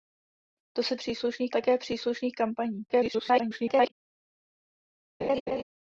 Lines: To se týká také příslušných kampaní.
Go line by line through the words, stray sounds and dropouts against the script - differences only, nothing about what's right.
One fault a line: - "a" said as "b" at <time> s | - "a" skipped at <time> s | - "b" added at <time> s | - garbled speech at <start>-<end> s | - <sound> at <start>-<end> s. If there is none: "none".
- "týká" said as "příslušných" at 1.0 s
- garbled speech at 2.9-3.9 s
- laugh at 5.2-5.6 s